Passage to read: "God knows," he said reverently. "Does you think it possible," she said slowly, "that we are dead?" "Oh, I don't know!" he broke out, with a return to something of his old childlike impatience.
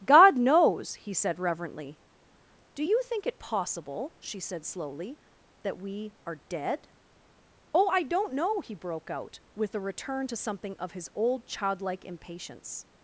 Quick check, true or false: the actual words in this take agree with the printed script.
false